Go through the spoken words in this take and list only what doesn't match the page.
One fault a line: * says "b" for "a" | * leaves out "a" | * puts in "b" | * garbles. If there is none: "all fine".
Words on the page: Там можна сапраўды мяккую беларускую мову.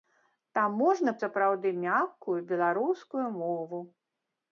all fine